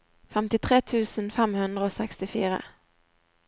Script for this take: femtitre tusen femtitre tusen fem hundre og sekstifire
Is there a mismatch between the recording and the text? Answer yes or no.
yes